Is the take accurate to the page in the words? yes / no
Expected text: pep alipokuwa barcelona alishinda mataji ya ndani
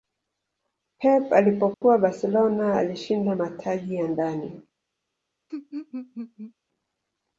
yes